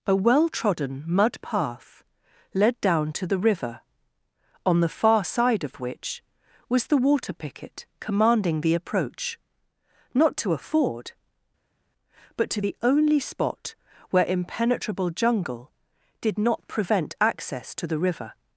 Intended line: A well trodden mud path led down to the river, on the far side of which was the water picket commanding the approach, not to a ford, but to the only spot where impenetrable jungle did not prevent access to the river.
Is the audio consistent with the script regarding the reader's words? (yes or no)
yes